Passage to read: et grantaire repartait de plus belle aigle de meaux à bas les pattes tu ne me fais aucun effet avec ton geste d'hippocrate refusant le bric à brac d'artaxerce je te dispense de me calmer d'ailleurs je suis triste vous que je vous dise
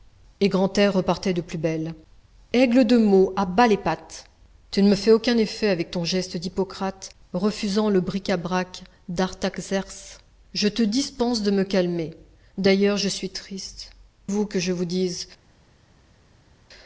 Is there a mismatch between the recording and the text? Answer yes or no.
no